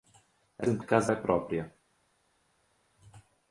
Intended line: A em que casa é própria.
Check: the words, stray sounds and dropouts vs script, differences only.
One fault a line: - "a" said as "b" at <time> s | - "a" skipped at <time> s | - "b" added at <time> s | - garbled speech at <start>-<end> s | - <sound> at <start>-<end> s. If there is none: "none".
none